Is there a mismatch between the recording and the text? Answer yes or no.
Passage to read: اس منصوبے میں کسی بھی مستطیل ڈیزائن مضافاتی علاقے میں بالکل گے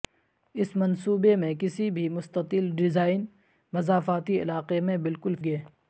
no